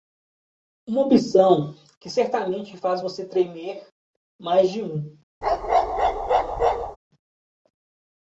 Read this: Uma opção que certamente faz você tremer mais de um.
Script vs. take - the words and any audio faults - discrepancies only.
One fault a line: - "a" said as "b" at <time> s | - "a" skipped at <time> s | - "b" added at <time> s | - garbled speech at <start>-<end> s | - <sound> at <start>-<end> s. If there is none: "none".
- bark at 5.4-7.0 s